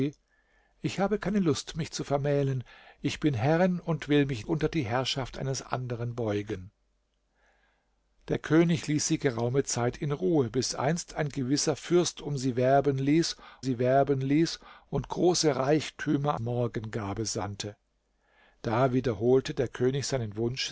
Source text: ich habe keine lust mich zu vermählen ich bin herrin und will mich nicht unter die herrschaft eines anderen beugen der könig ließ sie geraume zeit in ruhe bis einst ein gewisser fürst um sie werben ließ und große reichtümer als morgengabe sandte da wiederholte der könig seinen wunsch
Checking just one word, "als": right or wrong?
wrong